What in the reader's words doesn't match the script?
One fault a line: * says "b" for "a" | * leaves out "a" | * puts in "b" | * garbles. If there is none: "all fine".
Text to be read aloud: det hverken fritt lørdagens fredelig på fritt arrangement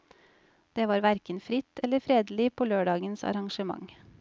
* puts in "var"
* says "eller" for "lørdagens"
* says "lørdagens" for "fritt"